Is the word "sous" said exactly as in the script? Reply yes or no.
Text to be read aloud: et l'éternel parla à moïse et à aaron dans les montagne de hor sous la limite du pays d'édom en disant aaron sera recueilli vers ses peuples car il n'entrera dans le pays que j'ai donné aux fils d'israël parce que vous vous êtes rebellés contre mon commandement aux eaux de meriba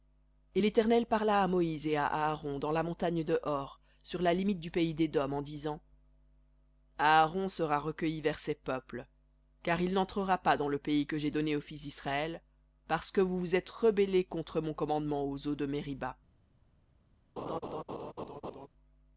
no